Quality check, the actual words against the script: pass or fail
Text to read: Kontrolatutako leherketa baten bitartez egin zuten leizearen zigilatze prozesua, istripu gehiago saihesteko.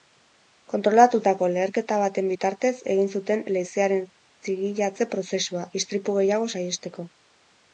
pass